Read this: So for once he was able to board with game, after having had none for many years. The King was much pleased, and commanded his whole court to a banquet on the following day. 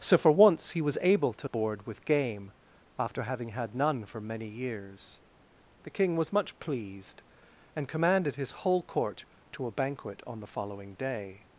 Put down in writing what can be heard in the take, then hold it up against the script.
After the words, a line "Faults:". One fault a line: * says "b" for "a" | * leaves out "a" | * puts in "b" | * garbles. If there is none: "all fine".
So for once he was able to board with game, after having had none for many years. The King was much pleased, and commanded his whole court to a banquet on the following day.
Faults:
all fine